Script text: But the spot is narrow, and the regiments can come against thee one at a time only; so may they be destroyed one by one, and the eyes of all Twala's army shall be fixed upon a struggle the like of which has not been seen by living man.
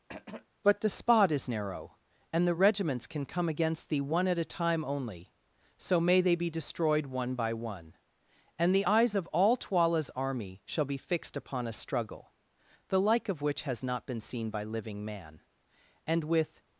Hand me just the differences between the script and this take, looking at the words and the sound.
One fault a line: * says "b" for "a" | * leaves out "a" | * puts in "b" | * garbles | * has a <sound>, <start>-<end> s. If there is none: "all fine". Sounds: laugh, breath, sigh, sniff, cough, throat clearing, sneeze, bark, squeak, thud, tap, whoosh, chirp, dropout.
* has a throat clearing, 0.1-0.5 s
* puts in "And with"